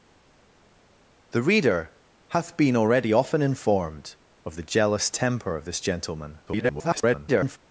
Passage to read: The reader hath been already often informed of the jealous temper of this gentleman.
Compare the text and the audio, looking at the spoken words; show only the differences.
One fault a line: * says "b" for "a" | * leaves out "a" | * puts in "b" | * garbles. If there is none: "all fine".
* garbles